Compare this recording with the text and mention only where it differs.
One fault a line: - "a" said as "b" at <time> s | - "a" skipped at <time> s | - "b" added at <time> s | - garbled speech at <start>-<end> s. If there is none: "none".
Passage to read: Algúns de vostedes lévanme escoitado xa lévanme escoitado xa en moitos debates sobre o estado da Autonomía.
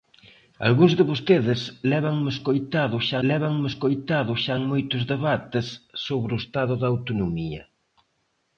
none